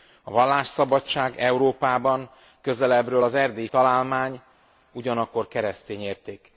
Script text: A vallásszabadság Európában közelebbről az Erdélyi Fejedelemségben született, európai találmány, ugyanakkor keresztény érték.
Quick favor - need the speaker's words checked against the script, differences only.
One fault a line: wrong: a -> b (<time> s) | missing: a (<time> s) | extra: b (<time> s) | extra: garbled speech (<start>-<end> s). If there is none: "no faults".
missing: Fejedelemségben született európai (3.7 s)